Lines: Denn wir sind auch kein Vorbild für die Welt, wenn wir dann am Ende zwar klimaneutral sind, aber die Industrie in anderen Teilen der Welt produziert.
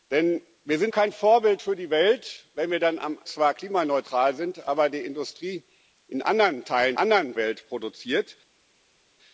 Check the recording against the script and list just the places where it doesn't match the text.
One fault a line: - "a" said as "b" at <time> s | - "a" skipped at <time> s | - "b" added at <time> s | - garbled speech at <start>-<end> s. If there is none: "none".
- "auch" skipped at 0.9 s
- "Ende" skipped at 3.2 s
- "der" said as "anderen" at 6.9 s